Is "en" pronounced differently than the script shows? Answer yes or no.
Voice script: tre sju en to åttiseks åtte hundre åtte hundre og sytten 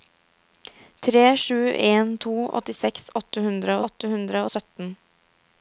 no